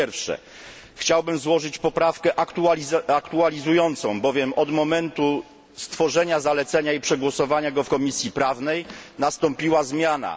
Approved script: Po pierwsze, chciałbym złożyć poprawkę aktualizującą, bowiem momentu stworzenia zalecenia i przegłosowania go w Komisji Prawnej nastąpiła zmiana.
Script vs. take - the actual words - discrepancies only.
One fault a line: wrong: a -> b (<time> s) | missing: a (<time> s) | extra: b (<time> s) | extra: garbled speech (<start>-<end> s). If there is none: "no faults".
extra: od (4.5 s)